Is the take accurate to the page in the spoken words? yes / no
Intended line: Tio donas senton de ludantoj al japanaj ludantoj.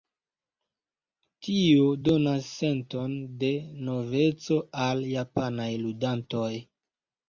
no